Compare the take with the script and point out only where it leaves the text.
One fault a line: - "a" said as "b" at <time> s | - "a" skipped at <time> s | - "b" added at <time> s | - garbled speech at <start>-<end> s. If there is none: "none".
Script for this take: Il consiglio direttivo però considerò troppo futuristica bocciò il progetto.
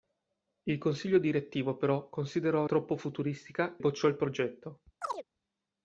none